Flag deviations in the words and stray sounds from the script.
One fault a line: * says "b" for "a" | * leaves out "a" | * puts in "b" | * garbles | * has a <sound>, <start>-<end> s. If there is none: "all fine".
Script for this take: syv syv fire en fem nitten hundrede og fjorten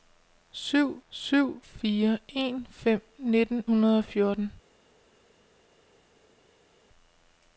all fine